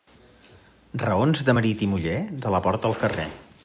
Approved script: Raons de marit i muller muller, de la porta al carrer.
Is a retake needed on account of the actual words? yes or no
yes